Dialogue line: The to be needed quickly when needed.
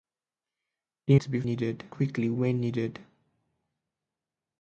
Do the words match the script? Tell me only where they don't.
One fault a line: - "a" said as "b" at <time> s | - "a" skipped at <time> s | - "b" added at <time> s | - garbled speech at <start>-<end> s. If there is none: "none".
none